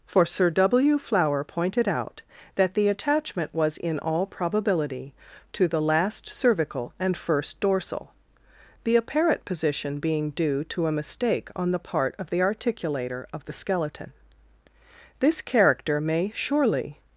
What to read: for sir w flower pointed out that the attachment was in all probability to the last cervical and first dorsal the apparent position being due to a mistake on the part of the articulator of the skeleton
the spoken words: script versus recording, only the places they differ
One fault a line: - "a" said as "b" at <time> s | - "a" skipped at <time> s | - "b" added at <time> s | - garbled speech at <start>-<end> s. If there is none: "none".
- "this character may surely" added at 15.2 s